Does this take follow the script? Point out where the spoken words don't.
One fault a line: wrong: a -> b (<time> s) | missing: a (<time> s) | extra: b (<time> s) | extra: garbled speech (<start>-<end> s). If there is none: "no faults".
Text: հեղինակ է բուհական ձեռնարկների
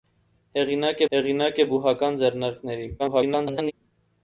extra: հեղինակ (1.2 s)
extra: garbled speech (3.0-3.7 s)